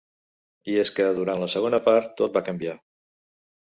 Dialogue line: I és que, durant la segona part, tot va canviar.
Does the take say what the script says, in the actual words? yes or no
yes